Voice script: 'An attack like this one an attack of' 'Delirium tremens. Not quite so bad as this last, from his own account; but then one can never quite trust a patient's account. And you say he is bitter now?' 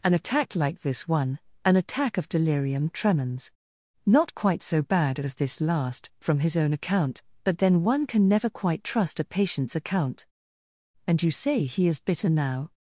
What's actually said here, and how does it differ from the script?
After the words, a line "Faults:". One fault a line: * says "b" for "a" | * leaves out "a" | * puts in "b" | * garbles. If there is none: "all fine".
'An attack like this one an attack of' 'Delirium tremens. Not quite so bad as this last, from his own account; but then one can never quite trust a patient's account. And you say he is bitter now?'
Faults:
all fine